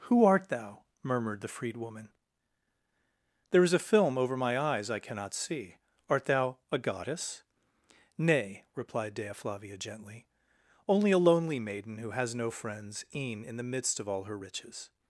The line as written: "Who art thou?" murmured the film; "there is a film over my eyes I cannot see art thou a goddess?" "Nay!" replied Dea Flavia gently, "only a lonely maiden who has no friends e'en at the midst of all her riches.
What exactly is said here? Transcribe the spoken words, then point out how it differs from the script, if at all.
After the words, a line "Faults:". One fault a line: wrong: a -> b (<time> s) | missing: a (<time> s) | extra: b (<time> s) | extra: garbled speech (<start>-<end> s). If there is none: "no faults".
"Who art thou?" murmured the freedwoman; "there is a film over my eyes I cannot see art thou a goddess?" "Nay!" replied Dea Flavia gently, "only a lonely maiden who has no friends e'en in the midst of all her riches.
Faults:
wrong: film -> freedwoman (1.5 s)
wrong: at -> in (13.4 s)